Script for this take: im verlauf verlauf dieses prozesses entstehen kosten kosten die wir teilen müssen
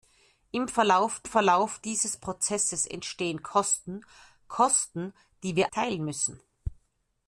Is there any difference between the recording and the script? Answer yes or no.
no